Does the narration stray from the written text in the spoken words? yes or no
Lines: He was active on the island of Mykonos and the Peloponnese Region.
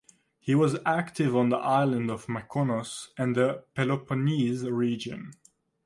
no